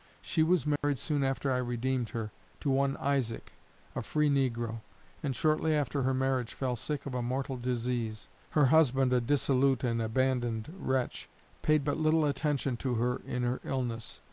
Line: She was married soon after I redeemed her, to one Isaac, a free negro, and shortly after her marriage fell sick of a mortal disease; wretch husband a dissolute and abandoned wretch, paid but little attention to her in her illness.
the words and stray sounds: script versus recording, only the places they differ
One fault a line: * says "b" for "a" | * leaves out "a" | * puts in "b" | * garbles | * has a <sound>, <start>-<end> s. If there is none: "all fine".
* has a dropout, 0.8-0.8 s
* says "her" for "wretch"